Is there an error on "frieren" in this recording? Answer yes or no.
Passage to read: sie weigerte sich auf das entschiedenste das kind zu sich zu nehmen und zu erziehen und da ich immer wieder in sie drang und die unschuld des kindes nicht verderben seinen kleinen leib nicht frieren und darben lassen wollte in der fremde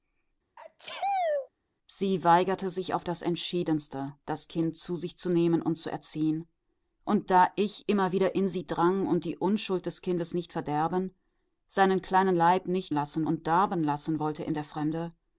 yes